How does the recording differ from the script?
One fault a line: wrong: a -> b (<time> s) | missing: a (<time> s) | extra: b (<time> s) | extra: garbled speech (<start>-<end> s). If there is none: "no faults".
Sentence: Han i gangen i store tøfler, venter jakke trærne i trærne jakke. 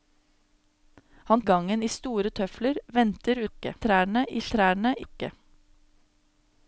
no faults